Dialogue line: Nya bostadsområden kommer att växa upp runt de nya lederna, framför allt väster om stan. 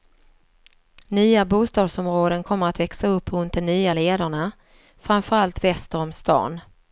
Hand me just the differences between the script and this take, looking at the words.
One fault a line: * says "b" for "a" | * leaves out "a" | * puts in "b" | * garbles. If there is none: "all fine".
all fine